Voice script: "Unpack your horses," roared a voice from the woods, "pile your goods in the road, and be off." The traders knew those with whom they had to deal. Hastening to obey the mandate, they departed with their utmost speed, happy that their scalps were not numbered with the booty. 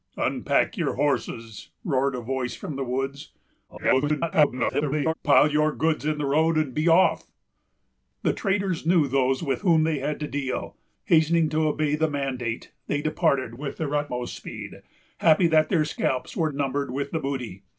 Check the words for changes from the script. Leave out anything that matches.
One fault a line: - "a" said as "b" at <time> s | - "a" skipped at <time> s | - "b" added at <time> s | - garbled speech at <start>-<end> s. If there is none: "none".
- garbled speech at 3.7-5.1 s
- "not" skipped at 16.5 s